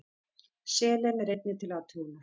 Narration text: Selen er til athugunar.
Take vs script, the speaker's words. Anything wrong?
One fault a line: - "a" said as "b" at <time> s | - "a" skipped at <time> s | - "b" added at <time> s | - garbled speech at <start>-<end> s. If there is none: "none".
- "einnig" added at 1.3 s